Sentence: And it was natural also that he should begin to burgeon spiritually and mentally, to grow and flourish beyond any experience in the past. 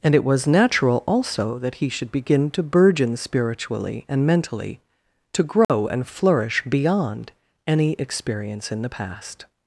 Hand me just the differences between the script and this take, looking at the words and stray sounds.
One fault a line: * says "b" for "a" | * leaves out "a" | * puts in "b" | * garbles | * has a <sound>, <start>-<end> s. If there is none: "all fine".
* has a dropout, 5.6-5.7 s